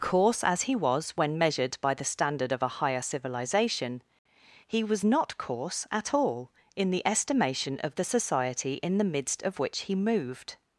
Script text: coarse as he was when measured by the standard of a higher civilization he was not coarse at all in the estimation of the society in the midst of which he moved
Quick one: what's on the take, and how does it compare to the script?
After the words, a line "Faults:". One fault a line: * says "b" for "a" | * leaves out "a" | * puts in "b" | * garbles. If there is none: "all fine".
coarse as he was when measured by the standard of a higher civilization he was not coarse at all in the estimation of the society in the midst of which he moved
Faults:
all fine